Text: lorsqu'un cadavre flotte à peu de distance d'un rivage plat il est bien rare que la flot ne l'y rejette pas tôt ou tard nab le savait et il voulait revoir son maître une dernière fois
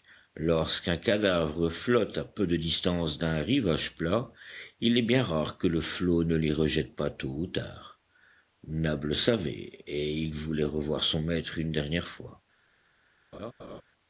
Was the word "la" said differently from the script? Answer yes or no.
yes